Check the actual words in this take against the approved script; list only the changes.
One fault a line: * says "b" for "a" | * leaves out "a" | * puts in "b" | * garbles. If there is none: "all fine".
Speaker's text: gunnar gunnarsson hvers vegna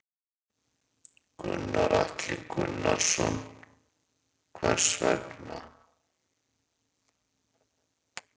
* puts in "atli"